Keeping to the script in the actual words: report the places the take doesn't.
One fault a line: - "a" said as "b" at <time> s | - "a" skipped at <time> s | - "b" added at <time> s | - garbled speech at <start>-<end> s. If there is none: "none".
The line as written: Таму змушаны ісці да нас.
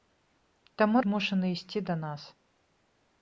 none